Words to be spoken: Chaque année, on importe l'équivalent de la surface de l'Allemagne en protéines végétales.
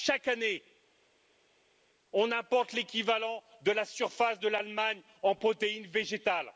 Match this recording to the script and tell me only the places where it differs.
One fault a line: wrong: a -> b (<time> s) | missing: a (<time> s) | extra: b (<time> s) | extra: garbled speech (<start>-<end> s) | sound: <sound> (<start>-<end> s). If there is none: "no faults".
no faults